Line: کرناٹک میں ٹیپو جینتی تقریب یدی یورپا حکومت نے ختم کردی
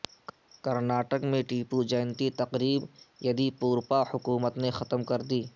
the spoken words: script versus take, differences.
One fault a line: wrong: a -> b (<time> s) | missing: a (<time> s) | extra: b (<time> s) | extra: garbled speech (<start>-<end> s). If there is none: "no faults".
no faults